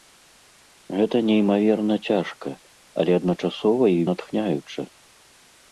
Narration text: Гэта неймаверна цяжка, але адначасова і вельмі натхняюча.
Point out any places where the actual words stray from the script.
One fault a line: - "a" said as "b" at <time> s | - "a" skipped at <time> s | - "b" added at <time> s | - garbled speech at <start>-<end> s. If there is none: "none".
- "вельмі" skipped at 4.0 s